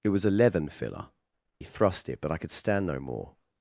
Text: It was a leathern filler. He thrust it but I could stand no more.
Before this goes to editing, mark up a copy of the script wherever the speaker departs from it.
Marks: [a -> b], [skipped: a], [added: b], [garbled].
It was a leathern filler. He thrust it but I could stand no more.